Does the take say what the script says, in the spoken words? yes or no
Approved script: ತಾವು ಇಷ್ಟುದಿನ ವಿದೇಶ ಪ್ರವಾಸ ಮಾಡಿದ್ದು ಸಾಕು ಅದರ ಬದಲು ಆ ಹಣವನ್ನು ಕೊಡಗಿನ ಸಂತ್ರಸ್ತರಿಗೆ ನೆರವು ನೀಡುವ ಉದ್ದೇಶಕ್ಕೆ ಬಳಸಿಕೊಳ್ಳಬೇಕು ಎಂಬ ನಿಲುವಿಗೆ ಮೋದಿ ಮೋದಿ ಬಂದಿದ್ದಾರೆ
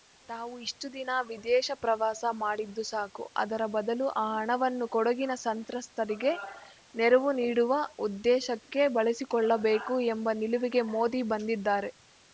no